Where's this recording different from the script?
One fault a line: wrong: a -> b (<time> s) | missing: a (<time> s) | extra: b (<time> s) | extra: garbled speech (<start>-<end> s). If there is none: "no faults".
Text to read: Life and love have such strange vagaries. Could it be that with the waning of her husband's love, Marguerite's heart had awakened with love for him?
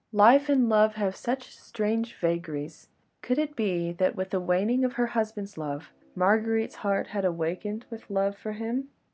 no faults